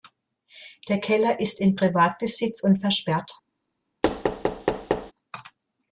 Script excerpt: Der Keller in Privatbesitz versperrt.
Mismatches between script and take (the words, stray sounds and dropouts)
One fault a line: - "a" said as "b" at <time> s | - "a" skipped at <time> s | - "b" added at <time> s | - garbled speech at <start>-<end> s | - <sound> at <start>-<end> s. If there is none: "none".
- "ist" added at 1.4 s
- "und" added at 2.6 s
- thud at 4.0-5.1 s